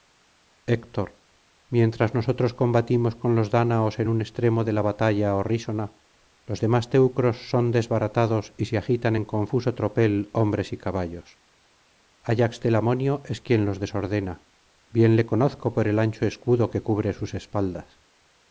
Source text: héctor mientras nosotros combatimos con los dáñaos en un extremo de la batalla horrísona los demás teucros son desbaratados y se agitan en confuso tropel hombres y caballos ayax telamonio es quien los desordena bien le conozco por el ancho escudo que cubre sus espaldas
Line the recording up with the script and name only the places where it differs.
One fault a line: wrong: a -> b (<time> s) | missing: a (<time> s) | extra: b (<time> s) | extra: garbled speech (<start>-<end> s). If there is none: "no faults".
no faults